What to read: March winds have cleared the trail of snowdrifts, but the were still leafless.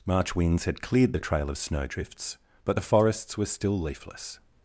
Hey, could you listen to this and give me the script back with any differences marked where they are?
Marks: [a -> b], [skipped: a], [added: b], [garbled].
March winds [have -> had] cleared the trail of snowdrifts, but the [added: forests] were still leafless.